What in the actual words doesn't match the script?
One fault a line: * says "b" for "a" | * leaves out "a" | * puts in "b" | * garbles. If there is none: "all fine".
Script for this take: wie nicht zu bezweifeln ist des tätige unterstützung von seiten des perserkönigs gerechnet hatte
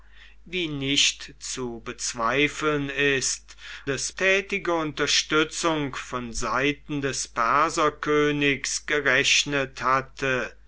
all fine